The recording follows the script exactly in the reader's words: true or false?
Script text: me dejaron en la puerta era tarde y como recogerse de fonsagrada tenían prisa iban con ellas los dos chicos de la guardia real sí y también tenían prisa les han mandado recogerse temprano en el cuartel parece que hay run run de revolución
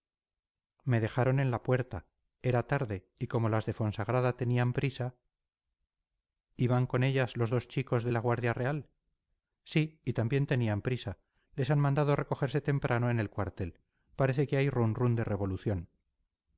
false